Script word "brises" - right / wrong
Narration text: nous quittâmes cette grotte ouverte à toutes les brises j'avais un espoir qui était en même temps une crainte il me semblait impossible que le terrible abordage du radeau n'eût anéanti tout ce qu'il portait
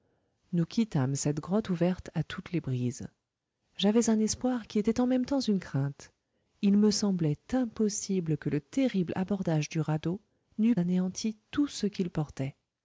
right